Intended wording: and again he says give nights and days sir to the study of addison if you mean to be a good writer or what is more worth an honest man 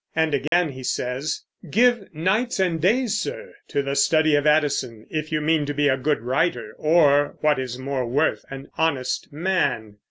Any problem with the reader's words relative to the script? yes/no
no